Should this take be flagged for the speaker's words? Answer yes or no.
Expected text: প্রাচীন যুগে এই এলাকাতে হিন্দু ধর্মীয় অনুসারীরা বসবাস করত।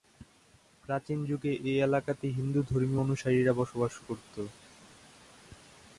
no